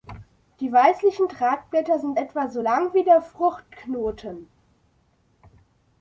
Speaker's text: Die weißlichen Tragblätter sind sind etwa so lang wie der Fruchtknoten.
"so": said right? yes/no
yes